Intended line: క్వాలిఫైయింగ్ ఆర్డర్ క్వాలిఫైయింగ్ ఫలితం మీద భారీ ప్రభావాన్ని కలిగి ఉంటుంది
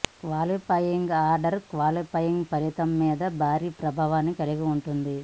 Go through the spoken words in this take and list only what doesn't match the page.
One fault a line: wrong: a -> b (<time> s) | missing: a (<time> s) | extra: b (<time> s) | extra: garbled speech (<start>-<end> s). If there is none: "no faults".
no faults